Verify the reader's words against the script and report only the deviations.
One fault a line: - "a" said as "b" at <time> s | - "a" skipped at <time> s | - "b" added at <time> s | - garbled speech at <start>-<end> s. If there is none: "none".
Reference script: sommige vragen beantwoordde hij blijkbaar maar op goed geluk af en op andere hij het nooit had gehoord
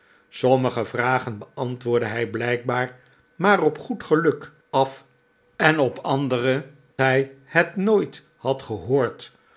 none